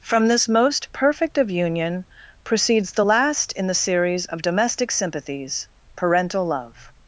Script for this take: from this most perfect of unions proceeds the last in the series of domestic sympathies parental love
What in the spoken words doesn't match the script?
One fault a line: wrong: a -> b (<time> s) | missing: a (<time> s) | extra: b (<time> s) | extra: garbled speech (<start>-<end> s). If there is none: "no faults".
wrong: unions -> union (1.5 s)